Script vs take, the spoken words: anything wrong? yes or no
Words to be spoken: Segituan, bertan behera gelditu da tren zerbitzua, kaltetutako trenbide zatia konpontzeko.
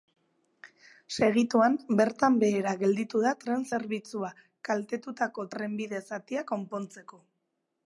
no